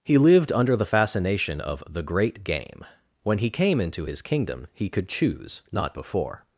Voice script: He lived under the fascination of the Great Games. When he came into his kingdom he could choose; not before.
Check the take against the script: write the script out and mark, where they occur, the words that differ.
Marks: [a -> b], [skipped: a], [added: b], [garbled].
He lived under the fascination of the Great [Games. -> Game] When he came into his kingdom he could choose; not before.